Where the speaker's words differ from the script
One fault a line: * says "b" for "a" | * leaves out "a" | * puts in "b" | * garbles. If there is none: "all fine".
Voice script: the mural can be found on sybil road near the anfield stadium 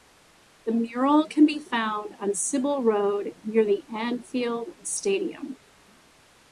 all fine